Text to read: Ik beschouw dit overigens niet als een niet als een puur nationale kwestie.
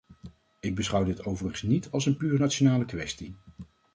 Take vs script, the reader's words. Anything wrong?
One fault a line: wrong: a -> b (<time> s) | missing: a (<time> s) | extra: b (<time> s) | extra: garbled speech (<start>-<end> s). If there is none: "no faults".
missing: niet als een (2.2 s)